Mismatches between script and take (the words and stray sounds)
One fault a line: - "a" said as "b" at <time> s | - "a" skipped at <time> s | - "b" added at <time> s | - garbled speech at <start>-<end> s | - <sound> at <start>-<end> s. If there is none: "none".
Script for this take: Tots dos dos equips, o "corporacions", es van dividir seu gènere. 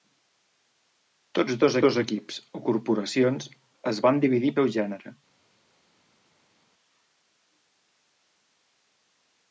none